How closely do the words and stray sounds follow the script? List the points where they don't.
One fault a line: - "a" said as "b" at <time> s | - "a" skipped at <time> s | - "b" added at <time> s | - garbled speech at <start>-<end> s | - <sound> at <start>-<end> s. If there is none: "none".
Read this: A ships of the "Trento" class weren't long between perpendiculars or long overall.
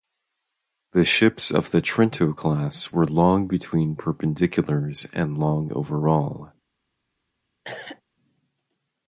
- "A" said as "The" at 0.9 s
- "weren't" said as "were" at 2.9 s
- "or" said as "and" at 5.1 s
- cough at 7.6-8.0 s